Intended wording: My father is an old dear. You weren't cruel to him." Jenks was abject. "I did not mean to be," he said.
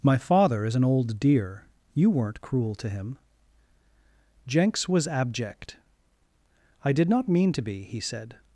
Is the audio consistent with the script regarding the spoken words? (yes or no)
yes